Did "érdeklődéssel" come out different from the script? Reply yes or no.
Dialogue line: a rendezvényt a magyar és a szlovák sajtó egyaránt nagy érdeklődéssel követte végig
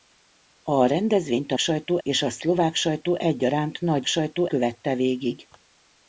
yes